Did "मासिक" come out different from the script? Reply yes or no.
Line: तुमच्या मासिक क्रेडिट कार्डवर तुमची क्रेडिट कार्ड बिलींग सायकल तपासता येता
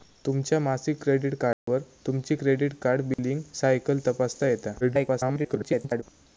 no